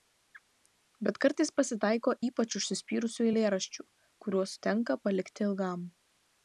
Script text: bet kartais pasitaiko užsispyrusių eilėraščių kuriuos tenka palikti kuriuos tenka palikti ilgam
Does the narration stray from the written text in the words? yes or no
yes